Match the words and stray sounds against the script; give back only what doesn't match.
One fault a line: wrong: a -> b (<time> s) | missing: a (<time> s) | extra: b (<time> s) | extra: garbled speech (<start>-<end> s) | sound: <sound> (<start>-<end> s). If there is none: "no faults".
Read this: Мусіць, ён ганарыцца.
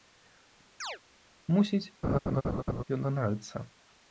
sound: chirp (0.8-1.0 s)
sound: laugh (2.0-2.8 s)